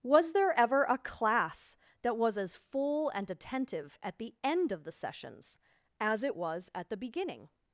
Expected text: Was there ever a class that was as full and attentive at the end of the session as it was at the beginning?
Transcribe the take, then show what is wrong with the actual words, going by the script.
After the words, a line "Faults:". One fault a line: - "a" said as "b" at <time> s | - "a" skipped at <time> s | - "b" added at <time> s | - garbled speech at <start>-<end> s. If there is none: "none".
Was there ever a class that was as full and attentive at the end of the sessions as it was at the beginning?
Faults:
- "session" said as "sessions" at 4.9 s